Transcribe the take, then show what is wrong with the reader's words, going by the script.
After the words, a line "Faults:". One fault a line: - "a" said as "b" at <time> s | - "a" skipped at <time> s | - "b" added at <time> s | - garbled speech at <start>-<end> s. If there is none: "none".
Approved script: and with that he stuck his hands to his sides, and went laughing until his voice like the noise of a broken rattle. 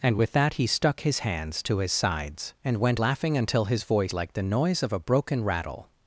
and with that he stuck his hands to his sides, and went laughing until his voice like the noise of a broken rattle.
Faults:
none